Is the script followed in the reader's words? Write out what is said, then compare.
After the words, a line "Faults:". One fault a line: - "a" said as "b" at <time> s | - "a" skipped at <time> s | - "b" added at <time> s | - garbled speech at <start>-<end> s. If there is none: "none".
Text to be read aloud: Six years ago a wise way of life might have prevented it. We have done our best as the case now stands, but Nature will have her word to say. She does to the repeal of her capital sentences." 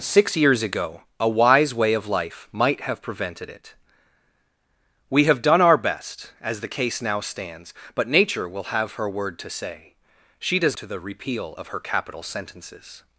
Six years ago a wise way of life might have prevented it. We have done our best as the case now stands, but Nature will have her word to say. She does to the repeal of her capital sentences."
Faults:
none